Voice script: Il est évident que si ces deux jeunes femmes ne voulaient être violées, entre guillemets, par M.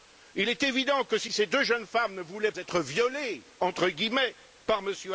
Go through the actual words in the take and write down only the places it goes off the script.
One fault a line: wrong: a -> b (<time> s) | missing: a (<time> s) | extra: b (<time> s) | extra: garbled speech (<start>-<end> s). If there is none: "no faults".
no faults